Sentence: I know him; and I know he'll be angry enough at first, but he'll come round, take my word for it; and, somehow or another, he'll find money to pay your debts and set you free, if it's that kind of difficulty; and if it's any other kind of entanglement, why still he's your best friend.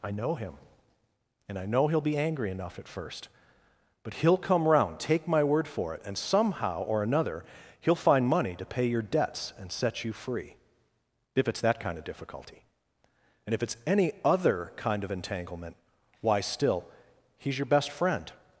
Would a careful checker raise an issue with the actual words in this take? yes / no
no